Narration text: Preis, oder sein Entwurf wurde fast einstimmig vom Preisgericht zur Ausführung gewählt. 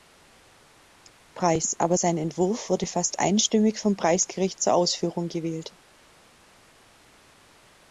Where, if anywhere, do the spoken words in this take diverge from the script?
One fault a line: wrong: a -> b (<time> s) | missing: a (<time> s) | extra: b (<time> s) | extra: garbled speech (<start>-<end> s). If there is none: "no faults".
wrong: oder -> aber (1.8 s)